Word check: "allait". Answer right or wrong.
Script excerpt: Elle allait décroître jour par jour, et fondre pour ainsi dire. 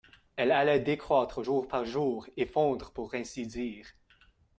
right